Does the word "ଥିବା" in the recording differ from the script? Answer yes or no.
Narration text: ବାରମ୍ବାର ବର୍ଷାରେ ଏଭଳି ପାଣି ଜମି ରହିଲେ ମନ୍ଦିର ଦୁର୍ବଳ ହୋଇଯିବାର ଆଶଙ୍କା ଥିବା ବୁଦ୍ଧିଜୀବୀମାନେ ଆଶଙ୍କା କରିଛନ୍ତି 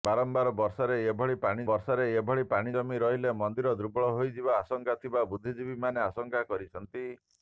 no